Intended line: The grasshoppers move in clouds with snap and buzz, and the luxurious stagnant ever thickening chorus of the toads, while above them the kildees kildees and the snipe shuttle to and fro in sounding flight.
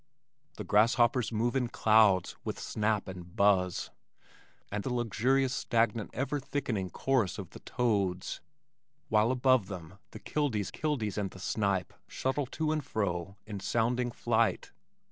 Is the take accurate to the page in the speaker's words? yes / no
yes